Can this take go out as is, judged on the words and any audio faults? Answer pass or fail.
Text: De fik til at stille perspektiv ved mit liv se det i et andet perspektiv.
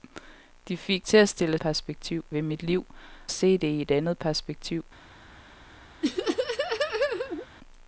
fail